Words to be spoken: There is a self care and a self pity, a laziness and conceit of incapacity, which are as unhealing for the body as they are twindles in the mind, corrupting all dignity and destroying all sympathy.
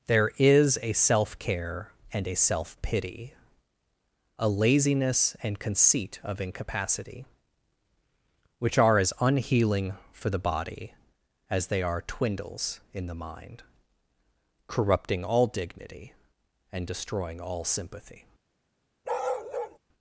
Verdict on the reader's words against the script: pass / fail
pass